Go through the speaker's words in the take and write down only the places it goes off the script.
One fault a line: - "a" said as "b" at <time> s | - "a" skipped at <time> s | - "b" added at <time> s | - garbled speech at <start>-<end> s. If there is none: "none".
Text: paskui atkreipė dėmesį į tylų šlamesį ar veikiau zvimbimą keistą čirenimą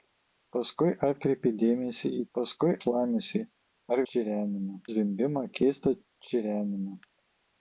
- "tylų" said as "paskui" at 2.4 s
- "veikiau" said as "čirenimą" at 4.1 s